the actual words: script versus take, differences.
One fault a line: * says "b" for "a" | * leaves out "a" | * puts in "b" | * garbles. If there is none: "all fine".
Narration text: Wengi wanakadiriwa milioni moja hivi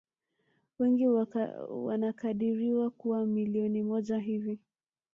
* puts in "kuwa"